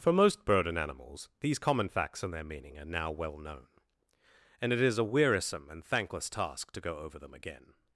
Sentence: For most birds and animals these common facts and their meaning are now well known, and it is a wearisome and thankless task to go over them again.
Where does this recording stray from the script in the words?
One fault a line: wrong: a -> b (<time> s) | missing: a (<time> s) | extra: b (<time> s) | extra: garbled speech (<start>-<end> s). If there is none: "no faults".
wrong: birds -> bird (0.5 s)